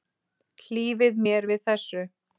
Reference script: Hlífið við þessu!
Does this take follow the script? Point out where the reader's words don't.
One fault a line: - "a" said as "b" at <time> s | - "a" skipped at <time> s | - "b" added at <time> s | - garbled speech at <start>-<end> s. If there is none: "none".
- "mér" added at 1.2 s